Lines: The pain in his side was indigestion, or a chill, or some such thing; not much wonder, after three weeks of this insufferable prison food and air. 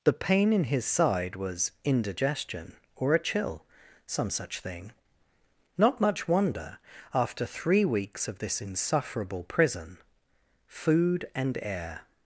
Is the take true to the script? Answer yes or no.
no